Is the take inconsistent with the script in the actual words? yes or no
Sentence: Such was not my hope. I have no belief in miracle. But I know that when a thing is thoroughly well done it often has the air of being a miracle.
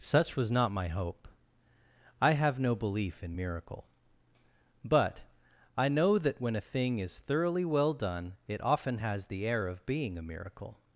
no